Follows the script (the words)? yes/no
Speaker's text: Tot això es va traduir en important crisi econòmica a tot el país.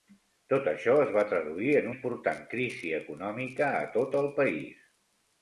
yes